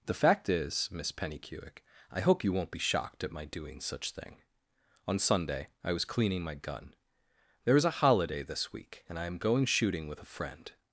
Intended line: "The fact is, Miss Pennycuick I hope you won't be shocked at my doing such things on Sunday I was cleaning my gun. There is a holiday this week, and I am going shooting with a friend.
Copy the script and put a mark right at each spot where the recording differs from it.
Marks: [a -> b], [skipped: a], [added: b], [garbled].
"The fact is, Miss Pennycuick I hope you won't be shocked at my doing such [things -> thing] on Sunday I was cleaning my gun. There is a holiday this week, and I am going shooting with a friend.